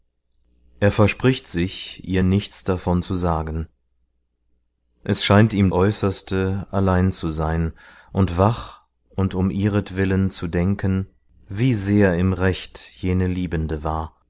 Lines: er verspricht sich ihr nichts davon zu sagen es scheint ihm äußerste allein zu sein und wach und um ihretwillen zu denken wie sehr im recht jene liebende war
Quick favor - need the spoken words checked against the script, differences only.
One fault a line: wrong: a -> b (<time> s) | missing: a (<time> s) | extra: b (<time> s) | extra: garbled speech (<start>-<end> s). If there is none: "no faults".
no faults